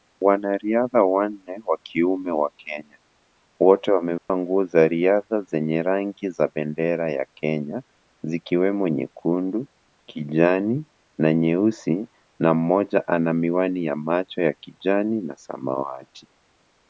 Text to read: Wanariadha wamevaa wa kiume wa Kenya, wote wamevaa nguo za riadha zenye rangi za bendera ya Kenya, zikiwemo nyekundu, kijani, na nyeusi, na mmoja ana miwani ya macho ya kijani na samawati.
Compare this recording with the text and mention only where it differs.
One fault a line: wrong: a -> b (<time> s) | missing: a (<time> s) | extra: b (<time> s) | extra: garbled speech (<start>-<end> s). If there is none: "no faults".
wrong: wamevaa -> wanne (1.0 s)